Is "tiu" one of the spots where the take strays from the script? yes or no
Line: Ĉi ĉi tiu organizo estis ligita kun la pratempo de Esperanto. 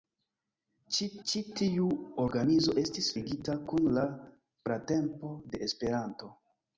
no